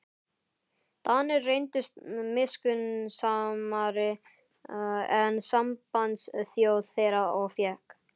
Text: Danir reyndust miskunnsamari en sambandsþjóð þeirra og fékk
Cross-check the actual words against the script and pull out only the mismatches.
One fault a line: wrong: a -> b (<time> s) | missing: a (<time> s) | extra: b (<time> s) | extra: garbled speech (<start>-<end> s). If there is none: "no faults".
no faults